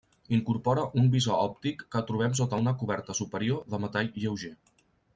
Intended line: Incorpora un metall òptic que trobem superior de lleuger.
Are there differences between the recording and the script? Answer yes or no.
yes